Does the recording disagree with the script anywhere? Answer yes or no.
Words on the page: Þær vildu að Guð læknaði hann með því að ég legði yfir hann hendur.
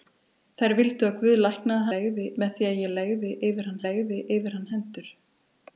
yes